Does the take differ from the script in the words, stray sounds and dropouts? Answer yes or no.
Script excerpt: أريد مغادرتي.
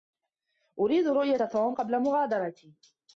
yes